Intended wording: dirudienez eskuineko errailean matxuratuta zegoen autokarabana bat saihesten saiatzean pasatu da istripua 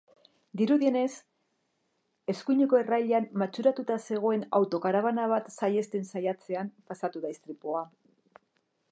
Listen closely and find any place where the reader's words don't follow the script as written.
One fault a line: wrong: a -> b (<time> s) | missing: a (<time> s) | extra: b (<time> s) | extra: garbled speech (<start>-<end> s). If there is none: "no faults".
no faults